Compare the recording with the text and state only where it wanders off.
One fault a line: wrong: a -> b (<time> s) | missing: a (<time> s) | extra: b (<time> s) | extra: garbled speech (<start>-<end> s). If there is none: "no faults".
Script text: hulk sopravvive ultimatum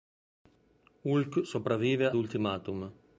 no faults